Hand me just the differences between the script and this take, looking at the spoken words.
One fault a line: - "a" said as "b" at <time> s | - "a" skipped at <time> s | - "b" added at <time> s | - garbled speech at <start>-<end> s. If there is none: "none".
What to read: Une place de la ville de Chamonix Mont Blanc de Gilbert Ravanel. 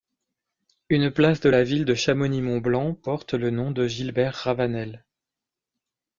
- "porte le nom" added at 2.9 s